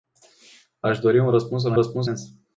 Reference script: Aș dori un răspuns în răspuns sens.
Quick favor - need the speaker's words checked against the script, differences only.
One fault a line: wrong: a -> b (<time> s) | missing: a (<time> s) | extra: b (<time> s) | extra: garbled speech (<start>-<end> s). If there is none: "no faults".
no faults